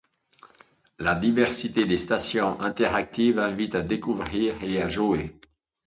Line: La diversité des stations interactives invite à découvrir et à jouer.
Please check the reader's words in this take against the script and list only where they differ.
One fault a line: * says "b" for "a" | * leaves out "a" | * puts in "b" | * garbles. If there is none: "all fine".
all fine